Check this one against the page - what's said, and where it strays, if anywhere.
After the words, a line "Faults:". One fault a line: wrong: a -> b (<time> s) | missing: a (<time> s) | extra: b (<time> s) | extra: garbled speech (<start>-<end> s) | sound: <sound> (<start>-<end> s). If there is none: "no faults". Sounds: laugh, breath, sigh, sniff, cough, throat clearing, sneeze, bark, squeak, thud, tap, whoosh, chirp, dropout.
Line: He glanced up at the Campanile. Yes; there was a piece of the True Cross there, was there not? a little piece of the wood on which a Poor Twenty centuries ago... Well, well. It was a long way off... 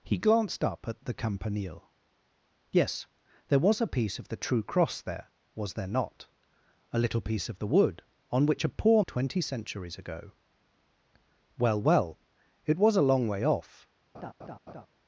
He glanced up at the Campanile. Yes; there was a piece of the True Cross there, was there not? a little piece of the wood on which a Poor Twenty centuries ago... Well, well. It was a long way off...
Faults:
sound: laugh (14.1-14.9 s)